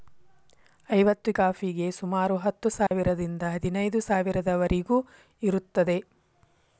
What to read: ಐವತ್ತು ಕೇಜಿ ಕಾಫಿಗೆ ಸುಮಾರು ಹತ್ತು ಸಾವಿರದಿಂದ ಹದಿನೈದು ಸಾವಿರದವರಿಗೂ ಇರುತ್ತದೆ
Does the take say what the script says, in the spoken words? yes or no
no